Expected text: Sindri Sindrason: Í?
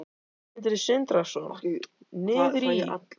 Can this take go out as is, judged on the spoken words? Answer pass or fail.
fail